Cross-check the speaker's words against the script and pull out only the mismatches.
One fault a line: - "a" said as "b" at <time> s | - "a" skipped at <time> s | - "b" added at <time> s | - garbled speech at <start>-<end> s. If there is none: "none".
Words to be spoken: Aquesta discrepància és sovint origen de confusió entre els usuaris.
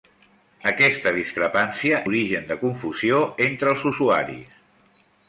- "és sovint" skipped at 2.0 s